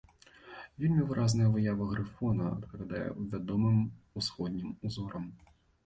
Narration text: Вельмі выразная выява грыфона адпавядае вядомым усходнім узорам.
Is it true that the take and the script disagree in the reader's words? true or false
false